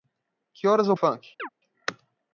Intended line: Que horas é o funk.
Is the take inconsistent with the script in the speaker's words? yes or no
no